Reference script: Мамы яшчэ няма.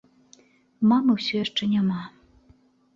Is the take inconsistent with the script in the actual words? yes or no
yes